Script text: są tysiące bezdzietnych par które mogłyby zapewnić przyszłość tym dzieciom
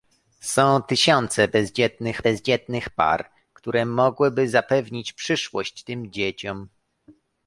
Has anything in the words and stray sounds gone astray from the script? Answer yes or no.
yes